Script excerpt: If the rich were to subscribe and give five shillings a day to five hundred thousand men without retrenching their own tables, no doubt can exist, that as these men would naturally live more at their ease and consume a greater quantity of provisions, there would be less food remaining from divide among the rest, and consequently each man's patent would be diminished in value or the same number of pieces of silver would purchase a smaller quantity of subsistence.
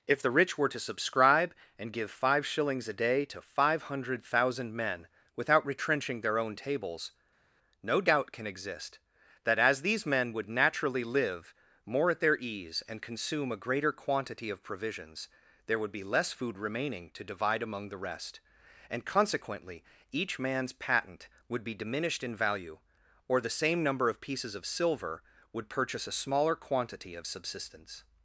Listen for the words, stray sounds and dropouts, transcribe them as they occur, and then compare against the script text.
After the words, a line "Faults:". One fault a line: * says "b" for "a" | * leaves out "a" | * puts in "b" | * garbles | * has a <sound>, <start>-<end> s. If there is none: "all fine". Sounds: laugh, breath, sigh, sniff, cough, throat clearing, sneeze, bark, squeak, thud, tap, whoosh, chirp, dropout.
If the rich were to subscribe and give five shillings a day to five hundred thousand men without retrenching their own tables, no doubt can exist, that as these men would naturally live more at their ease and consume a greater quantity of provisions, there would be less food remaining to divide among the rest, and consequently each man's patent would be diminished in value or the same number of pieces of silver would purchase a smaller quantity of subsistence.
Faults:
* says "to" for "from"